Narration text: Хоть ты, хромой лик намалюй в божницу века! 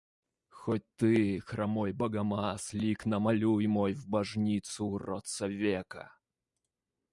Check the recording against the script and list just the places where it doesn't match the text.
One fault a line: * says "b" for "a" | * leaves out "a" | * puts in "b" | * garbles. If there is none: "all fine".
* puts in "богомаз"
* puts in "мой"
* puts in "уродца"